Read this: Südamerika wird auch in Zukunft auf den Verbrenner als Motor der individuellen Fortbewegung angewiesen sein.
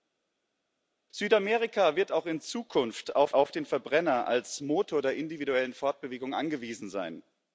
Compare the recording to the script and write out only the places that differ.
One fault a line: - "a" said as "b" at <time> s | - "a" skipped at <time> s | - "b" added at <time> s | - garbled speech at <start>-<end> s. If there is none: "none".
- "auf" added at 3.3 s